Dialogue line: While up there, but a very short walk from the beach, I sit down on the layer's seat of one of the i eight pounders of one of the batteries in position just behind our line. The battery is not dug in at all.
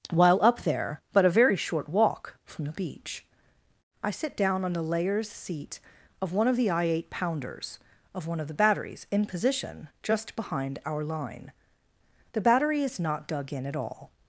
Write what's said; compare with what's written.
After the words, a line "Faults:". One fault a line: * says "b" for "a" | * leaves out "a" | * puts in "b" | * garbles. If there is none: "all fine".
While up there, but a very short walk from the beach, I sit down on the layer's seat of one of the i eight pounders of one of the batteries in position just behind our line. The battery is not dug in at all.
Faults:
all fine